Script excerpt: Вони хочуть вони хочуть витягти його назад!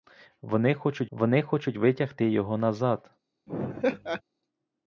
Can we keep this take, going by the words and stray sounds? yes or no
no